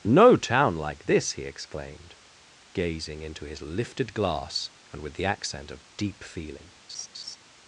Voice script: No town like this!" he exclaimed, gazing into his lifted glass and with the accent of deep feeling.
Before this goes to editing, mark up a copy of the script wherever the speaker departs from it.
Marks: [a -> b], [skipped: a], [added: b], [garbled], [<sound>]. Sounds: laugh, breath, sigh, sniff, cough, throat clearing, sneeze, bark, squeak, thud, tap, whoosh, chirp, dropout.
No town like this!" he exclaimed, gazing into his lifted glass and with the accent of deep feeling. [laugh]